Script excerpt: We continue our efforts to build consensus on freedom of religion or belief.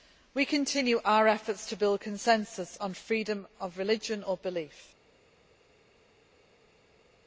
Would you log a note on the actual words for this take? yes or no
no